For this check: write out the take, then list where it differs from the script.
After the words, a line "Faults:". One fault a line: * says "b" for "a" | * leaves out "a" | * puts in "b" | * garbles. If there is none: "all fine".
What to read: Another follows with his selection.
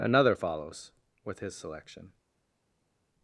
Another follows with his selection.
Faults:
all fine